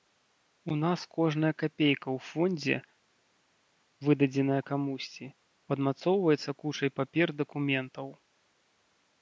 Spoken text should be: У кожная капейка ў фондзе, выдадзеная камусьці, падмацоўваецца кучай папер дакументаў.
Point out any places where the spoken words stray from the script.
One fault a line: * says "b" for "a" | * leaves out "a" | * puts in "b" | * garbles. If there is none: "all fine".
* puts in "нас"